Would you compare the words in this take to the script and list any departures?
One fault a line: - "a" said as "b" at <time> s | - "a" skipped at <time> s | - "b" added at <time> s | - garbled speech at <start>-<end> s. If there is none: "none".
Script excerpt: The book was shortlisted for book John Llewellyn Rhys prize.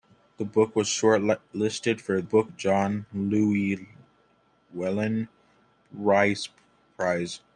none